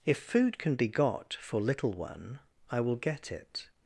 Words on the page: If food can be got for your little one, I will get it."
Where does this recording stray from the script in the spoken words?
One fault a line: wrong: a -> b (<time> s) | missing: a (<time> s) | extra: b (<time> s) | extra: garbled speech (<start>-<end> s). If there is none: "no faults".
missing: your (1.6 s)